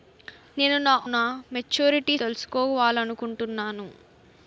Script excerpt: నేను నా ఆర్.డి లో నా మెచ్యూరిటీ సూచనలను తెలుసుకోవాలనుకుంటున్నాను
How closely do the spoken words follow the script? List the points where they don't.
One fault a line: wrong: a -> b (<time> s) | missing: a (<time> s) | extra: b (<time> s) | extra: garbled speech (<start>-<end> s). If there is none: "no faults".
missing: ఆర్.డి లో (0.9 s)
missing: సూచనలను (2.2 s)